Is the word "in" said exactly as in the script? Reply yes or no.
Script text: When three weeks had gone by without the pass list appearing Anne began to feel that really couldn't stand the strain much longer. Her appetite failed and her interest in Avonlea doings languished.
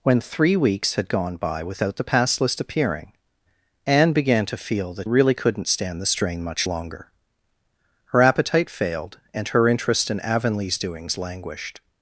yes